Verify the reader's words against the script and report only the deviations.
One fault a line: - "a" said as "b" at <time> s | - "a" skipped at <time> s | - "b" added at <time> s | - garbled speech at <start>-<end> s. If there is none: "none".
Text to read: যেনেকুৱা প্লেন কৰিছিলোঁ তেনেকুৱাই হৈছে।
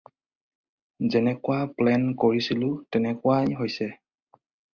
none